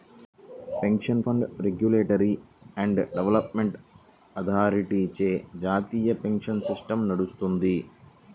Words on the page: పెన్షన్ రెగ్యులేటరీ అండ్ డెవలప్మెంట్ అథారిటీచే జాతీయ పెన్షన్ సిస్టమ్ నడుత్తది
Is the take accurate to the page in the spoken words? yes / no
no